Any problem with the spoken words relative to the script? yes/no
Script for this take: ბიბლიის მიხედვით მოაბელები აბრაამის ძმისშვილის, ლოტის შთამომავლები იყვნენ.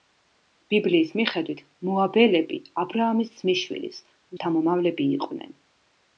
yes